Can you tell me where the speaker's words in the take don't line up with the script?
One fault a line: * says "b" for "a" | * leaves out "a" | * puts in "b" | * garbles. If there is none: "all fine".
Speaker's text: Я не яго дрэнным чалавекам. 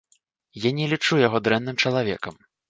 * puts in "лічу"